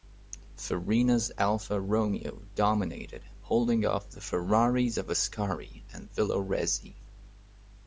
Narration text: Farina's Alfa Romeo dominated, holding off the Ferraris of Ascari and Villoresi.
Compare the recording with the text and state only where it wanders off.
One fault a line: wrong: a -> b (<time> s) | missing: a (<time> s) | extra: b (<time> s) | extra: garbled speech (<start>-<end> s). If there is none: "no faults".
no faults